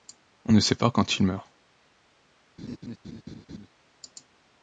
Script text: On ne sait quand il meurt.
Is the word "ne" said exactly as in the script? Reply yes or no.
yes